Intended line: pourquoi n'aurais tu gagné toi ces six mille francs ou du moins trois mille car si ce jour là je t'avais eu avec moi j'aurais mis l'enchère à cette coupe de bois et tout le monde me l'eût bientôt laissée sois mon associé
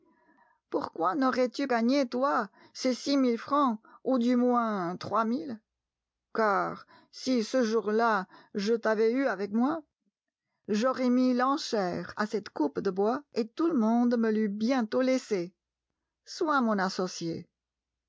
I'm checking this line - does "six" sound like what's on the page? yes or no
yes